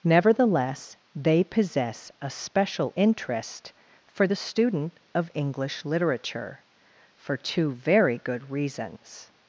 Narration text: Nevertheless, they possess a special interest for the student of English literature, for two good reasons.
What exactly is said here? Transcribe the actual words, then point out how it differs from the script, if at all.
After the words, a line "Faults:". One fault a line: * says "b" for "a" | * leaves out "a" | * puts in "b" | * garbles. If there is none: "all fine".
Nevertheless, they possess a special interest for the student of English literature, for two very good reasons.
Faults:
* puts in "very"